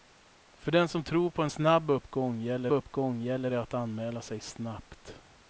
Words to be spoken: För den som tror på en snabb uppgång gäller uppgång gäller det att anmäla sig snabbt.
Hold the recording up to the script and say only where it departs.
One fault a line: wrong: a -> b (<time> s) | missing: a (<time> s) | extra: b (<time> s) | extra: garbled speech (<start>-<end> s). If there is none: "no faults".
no faults